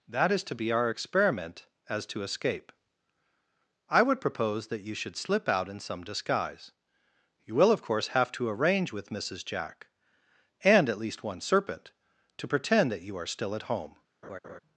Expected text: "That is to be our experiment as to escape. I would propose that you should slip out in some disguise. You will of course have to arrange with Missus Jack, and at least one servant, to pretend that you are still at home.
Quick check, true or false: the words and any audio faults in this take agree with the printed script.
false